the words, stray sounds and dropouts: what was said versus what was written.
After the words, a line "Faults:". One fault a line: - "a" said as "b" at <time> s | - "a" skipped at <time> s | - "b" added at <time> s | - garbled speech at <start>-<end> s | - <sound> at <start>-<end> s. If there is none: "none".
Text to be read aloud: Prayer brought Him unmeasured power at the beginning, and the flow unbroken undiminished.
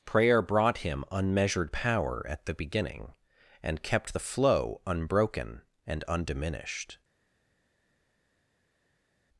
Prayer brought Him unmeasured power at the beginning, and kept the flow unbroken and undiminished.
Faults:
- "kept" added at 3.8 s
- "and" added at 5.9 s